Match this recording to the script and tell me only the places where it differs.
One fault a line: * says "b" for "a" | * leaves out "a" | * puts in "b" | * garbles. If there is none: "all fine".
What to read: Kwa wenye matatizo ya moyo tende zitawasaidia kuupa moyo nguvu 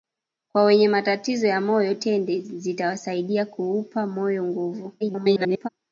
* garbles